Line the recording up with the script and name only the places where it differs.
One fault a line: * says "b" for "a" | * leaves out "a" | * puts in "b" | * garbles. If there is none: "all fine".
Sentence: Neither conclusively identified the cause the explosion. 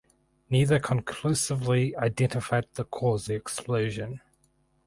all fine